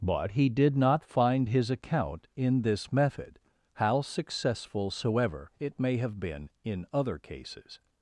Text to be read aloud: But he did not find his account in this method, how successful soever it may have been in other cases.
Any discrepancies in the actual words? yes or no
no